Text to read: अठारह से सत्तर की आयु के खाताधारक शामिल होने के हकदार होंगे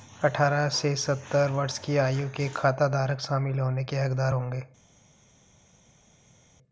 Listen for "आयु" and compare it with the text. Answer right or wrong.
right